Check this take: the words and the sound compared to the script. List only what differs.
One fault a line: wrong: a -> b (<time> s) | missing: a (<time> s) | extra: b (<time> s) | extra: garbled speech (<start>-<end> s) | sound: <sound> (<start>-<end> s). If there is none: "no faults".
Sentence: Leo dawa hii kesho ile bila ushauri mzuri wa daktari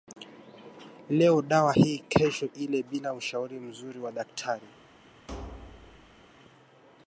sound: thud (5.3-6.2 s)